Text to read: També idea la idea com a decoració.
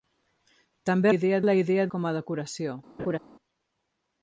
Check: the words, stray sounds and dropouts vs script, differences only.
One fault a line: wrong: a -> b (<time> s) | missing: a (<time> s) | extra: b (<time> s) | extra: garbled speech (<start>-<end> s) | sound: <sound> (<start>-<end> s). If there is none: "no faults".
sound: laugh (3.0-3.2 s)